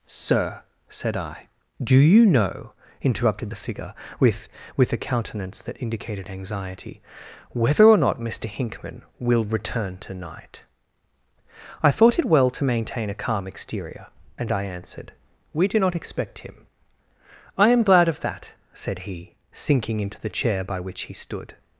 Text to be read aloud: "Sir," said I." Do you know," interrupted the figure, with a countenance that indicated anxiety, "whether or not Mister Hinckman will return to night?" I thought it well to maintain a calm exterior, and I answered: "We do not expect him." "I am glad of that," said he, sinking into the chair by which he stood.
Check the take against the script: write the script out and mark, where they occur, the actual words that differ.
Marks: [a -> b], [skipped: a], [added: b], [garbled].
"Sir," said I." Do you know," interrupted the figure, with [added: with] a countenance that indicated anxiety, "whether or not Mister Hinckman will return to night?" I thought it well to maintain a calm exterior, and I answered: "We do not expect him." "I am glad of that," said he, sinking into the chair by which he stood.